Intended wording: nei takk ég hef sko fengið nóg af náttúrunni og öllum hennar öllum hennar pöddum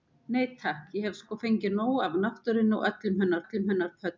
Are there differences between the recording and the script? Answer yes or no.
no